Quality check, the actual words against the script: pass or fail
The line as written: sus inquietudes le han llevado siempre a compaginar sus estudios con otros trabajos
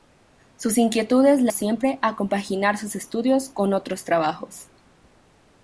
fail